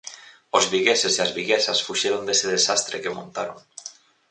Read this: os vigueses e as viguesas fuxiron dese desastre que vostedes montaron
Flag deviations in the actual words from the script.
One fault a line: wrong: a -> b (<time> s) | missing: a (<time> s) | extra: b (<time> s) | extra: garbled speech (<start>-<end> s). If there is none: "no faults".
missing: vostedes (3.1 s)